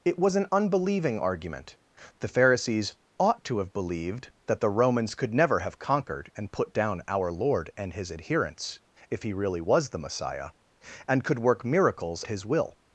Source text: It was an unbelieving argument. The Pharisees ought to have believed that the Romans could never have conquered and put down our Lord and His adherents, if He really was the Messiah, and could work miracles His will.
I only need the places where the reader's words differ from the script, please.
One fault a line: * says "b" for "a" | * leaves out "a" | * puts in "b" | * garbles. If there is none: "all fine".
all fine